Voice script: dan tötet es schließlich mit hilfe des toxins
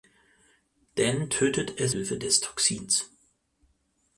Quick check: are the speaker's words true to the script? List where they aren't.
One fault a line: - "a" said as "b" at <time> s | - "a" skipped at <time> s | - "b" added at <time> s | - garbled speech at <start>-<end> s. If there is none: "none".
- "schließlich mit" skipped at 1.9 s